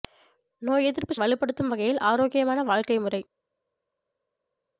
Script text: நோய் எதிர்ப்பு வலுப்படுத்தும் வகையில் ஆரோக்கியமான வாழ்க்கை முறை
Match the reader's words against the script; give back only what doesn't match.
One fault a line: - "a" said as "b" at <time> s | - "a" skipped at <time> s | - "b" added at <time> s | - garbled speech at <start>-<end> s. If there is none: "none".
none